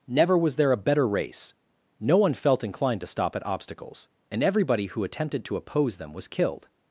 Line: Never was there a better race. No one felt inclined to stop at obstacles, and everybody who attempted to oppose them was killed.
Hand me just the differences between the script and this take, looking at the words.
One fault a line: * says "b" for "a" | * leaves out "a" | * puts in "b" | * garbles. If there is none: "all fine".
all fine